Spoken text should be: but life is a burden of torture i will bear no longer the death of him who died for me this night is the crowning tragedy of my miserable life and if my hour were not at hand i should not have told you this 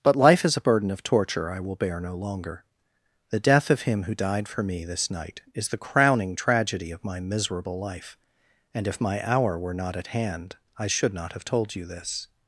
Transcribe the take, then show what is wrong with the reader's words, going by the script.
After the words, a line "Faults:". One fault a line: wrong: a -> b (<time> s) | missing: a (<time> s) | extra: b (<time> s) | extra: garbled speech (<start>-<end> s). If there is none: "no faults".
but life is a burden of torture i will bear no longer the death of him who died for me this night is the crowning tragedy of my miserable life and if my hour were not at hand i should not have told you this
Faults:
no faults